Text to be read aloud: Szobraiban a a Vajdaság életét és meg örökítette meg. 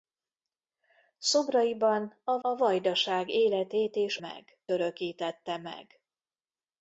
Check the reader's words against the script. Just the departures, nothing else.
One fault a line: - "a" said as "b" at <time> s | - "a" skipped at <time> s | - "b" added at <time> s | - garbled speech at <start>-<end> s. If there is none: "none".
none